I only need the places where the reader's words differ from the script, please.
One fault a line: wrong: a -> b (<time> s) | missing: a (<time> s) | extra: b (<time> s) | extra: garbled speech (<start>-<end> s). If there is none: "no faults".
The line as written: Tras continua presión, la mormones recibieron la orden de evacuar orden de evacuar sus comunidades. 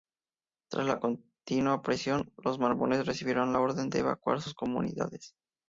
extra: la (0.9 s)
wrong: la -> los (2.4 s)
missing: orden de evacuar (4.4 s)